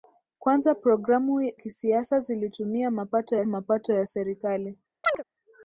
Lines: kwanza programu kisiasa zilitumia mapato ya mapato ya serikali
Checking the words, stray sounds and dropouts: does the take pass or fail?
fail